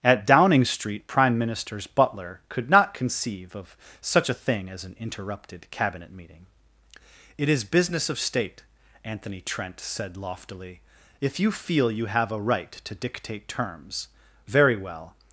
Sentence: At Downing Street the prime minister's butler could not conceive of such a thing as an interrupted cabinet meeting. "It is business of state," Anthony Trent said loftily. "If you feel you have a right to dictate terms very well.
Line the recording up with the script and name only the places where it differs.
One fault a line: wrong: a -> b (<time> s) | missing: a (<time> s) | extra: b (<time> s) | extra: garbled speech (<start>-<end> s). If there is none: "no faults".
missing: the (1.1 s)